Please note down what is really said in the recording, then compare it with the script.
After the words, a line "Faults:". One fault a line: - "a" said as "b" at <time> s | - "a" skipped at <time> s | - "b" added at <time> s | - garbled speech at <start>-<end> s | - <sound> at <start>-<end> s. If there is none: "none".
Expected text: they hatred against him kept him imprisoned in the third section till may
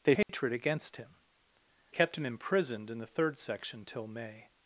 they hatred against him kept him imprisoned in the third section till may
Faults:
- dropout at 0.2-0.3 s